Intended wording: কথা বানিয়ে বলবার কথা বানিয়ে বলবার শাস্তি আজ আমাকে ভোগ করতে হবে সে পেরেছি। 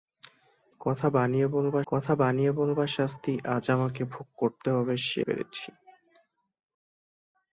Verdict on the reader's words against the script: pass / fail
pass